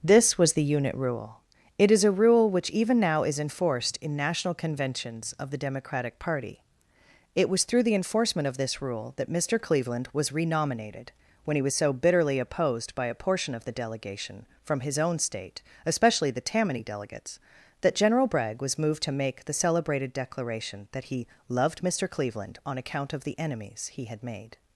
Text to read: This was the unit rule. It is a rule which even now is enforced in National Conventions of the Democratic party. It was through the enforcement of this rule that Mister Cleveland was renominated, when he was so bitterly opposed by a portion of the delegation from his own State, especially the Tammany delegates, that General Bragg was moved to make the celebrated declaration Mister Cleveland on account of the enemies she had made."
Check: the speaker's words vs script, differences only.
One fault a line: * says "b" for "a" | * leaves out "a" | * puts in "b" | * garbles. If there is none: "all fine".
* puts in "that he loved"
* says "he" for "she"